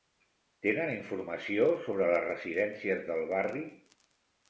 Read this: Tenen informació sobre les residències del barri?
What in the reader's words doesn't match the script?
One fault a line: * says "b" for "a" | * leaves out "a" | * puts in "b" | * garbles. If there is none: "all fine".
all fine